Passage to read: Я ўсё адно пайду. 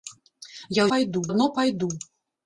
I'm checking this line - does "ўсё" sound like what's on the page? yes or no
no